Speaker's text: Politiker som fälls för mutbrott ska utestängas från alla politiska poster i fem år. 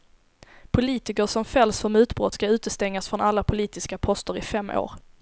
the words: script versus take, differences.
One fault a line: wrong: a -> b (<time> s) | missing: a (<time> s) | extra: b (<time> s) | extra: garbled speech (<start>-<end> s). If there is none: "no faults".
no faults